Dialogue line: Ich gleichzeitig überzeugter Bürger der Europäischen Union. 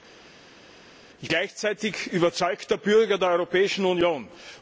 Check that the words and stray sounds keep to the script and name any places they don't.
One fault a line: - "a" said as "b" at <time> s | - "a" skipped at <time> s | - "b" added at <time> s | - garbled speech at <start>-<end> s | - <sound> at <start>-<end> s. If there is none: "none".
none